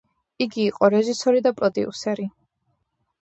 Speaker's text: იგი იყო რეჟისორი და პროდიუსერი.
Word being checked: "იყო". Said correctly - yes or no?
yes